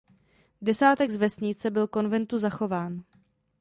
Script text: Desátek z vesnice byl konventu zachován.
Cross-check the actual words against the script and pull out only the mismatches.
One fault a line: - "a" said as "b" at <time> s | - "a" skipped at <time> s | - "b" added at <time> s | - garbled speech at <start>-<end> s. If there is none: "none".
none